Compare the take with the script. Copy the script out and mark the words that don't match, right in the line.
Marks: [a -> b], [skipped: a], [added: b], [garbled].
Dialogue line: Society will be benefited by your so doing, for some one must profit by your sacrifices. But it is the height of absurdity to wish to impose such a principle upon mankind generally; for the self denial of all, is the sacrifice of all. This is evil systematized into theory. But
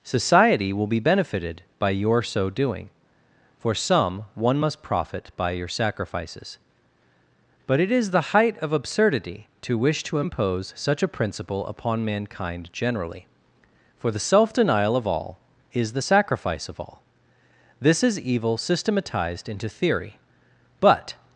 Society will be benefited by your so doing, for some one must profit by your sacrifices. But it is the height of absurdity to wish to impose such a principle upon mankind generally; for the self denial of all, is the sacrifice of all. This is evil systematized into theory. But